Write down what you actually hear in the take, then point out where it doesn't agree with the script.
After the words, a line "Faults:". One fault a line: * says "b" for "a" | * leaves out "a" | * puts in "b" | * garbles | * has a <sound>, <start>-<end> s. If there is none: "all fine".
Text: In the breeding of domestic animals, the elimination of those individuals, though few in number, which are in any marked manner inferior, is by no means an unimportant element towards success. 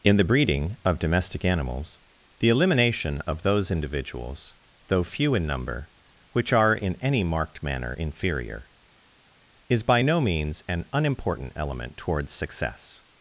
In the breeding of domestic animals, the elimination of those individuals, though few in number, which are in any marked manner inferior, is by no means an unimportant element towards success.
Faults:
all fine